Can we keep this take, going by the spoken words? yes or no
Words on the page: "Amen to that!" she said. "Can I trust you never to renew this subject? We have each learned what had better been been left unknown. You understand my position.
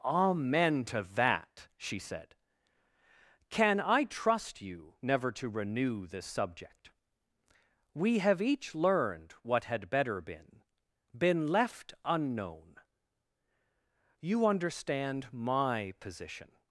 yes